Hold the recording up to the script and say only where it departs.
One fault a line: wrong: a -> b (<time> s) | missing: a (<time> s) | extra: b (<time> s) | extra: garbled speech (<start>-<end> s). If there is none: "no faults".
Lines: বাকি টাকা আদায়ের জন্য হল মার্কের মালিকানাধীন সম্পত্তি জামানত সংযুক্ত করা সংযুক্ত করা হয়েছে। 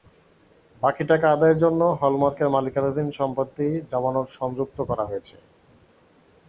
missing: সংযুক্ত করা (5.0 s)